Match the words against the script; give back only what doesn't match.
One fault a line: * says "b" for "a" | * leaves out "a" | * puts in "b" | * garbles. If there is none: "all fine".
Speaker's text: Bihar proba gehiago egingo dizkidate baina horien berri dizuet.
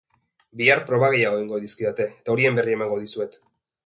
* says "eta" for "baina"
* puts in "emango"